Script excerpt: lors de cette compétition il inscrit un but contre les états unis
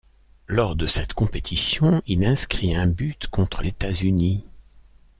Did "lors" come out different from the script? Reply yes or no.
no